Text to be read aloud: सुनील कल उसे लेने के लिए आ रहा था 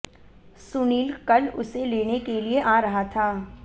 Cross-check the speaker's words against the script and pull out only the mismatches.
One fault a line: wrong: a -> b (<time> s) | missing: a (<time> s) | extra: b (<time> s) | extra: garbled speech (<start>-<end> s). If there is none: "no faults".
no faults